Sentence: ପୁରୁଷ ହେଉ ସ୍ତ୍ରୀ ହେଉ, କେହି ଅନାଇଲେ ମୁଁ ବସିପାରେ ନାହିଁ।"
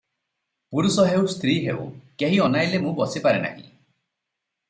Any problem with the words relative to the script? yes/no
no